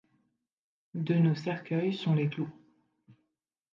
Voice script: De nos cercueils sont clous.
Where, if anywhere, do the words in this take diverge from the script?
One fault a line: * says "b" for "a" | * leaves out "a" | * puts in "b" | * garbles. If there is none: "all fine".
* puts in "les"